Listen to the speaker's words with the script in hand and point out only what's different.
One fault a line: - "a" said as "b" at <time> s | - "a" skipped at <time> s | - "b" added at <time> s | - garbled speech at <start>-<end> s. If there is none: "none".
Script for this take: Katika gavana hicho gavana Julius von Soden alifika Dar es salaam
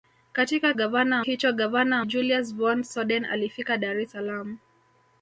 none